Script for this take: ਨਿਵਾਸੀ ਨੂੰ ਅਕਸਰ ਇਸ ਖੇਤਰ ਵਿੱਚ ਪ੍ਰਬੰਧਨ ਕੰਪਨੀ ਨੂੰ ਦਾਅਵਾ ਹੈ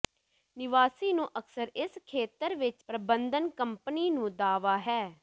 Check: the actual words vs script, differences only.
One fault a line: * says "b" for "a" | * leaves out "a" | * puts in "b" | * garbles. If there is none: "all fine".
all fine